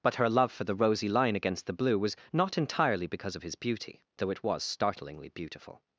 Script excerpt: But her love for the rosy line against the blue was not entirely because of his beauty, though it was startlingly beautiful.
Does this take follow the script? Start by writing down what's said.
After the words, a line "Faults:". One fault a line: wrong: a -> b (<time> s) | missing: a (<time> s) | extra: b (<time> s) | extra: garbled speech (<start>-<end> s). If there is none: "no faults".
But her love for the rosy line against the blue was not entirely because of his beauty, though it was startlingly beautiful.
Faults:
no faults